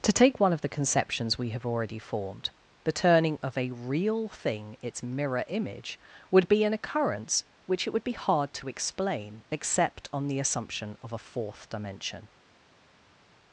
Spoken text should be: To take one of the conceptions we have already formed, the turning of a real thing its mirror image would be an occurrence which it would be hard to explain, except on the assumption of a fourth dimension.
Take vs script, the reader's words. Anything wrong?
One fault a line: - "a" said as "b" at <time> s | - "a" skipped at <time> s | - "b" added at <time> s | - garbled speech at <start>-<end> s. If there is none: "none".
none